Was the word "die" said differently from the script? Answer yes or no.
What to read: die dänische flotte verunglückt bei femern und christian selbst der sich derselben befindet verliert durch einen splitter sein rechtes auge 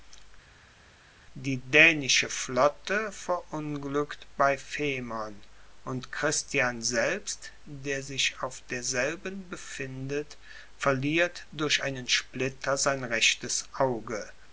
no